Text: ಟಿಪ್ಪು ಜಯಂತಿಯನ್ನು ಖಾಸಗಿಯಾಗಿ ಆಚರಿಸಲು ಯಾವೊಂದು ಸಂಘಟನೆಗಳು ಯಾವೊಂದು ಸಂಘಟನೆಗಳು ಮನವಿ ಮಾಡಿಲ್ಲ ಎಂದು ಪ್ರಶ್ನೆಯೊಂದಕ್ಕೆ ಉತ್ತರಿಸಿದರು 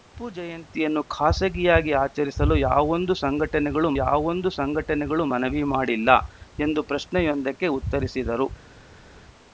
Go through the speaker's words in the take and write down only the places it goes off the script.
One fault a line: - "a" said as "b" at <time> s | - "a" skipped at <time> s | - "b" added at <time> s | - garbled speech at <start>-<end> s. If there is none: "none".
none